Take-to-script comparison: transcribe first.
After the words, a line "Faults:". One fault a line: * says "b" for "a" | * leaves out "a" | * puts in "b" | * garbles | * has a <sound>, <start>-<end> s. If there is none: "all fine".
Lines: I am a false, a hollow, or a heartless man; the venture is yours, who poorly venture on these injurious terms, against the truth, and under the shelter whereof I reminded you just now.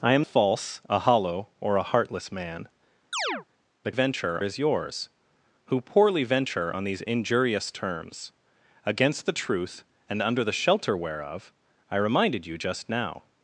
I am a false, a hollow, or a heartless man; the venture is yours, who poorly venture on these injurious terms, against the truth, and under the shelter whereof I reminded you just now.
Faults:
* has a chirp, 3.1-3.5 s